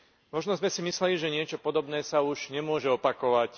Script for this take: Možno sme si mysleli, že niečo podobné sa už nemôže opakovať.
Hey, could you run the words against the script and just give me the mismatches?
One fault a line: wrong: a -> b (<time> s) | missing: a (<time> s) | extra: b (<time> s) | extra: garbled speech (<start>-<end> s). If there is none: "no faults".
no faults